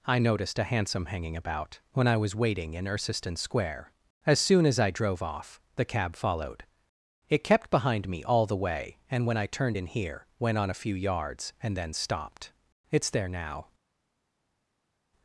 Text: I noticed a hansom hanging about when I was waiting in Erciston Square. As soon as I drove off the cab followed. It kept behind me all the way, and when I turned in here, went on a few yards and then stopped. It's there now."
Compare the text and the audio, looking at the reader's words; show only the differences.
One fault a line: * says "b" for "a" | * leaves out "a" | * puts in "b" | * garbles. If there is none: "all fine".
all fine